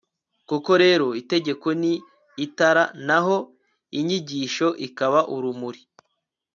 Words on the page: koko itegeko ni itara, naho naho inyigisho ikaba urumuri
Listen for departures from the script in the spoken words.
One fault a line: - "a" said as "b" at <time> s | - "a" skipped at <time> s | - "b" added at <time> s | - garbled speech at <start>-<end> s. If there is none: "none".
- "rero" added at 0.8 s
- "naho" skipped at 3.4 s